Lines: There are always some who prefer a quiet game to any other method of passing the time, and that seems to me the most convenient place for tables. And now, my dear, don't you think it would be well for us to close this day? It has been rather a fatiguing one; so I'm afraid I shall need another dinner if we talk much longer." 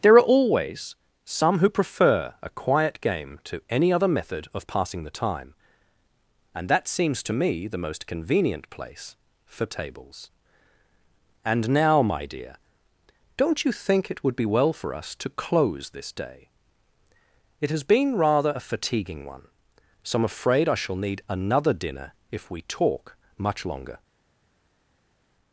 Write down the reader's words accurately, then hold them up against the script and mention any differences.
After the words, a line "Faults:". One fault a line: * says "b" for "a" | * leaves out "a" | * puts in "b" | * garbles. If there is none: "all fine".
There are always some who prefer a quiet game to any other method of passing the time, and that seems to me the most convenient place for tables. And now, my dear, don't you think it would be well for us to close this day? It has been rather a fatiguing one; so I'm afraid I shall need another dinner if we talk much longer."
Faults:
all fine